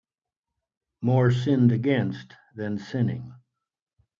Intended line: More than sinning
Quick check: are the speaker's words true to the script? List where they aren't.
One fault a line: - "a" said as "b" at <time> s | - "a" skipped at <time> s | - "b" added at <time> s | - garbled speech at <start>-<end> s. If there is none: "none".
- "sinned against" added at 1.3 s